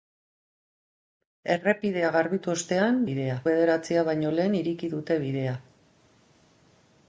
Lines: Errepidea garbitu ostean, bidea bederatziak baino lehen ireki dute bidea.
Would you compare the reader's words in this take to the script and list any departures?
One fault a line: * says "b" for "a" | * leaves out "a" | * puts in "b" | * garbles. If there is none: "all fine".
all fine